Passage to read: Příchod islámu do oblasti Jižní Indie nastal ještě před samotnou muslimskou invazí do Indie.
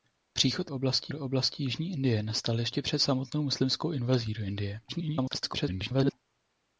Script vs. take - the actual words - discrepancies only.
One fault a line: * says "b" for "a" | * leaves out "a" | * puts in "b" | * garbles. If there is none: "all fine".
* says "oblasti" for "islámu"
* garbles